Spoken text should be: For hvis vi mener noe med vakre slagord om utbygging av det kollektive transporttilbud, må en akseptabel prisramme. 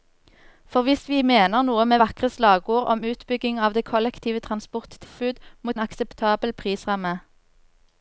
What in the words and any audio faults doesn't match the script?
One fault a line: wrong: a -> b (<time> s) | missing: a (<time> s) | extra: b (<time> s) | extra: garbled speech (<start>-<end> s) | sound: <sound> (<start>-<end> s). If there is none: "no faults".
sound: dropout (5.1-5.2 s)